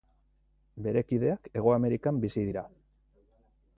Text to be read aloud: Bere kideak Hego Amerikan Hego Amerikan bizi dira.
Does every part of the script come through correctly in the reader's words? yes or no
no